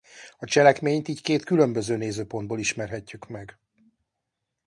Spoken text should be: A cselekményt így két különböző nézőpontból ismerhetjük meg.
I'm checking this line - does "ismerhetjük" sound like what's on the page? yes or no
yes